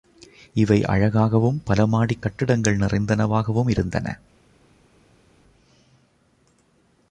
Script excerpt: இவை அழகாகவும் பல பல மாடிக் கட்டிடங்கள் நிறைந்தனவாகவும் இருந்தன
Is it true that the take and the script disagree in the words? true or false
true